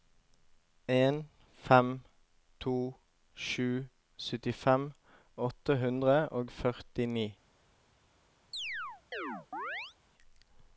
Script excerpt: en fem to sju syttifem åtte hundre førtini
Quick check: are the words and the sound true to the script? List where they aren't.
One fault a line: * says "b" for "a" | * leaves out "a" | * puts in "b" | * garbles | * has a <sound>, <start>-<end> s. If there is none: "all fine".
* puts in "og"
* has a chirp, 8.5-10.0 s